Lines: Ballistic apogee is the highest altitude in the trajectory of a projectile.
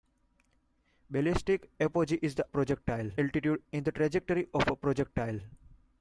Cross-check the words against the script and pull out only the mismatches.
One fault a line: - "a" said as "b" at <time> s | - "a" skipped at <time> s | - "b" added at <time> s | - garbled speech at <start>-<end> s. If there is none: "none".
- "highest" said as "projectile" at 2.4 s